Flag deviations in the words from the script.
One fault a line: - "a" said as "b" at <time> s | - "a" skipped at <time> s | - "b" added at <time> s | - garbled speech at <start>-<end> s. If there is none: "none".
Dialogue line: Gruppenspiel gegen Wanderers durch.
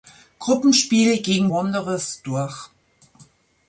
none